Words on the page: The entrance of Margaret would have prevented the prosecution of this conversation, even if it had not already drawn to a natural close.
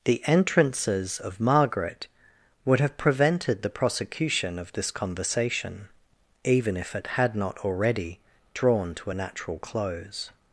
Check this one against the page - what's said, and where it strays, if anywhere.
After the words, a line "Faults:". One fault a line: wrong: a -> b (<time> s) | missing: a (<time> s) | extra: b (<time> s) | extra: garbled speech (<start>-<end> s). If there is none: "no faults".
The entrances of Margaret would have prevented the prosecution of this conversation, even if it had not already drawn to a natural close.
Faults:
wrong: entrance -> entrances (0.2 s)